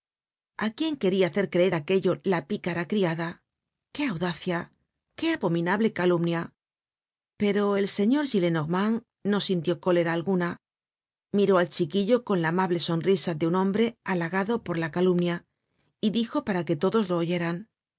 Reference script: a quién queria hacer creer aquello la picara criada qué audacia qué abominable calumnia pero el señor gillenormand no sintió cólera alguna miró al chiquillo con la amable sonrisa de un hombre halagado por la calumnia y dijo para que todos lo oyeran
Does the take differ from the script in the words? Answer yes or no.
no